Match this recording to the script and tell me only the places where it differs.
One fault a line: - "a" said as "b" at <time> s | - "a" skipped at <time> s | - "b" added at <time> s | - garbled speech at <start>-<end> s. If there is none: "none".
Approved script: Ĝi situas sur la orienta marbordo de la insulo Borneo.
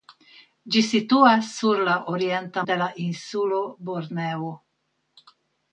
- "marbordo" skipped at 2.6 s